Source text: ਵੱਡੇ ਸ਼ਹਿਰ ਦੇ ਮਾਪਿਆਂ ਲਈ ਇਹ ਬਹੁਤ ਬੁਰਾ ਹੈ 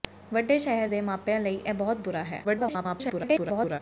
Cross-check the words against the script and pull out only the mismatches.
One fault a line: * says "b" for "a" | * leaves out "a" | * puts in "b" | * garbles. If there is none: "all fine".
* garbles